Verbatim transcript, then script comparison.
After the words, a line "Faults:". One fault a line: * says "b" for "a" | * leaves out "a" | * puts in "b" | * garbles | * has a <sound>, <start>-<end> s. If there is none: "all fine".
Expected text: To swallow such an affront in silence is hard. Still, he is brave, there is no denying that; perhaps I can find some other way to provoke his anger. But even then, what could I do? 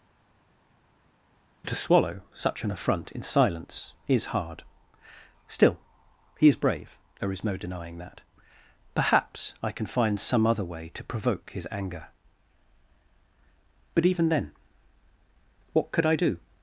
To swallow such an affront in silence is hard. Still, he is brave, there is no denying that; perhaps I can find some other way to provoke his anger. But even then, what could I do?
Faults:
all fine